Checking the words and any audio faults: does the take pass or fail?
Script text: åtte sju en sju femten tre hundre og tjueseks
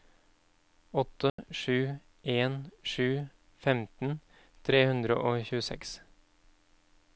fail